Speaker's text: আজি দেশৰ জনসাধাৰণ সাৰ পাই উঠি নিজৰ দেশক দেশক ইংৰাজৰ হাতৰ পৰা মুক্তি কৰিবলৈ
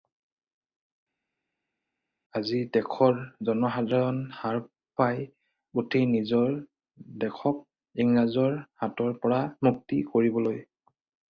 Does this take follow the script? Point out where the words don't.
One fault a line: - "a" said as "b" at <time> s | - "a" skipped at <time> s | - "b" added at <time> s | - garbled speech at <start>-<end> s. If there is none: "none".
- "দেশক" skipped at 7.6 s